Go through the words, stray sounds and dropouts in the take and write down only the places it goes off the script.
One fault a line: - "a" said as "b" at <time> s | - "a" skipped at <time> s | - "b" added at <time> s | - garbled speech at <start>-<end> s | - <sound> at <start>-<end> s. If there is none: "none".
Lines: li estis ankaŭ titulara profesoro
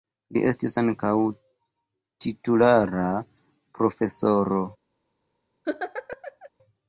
- laugh at 5.6-6.5 s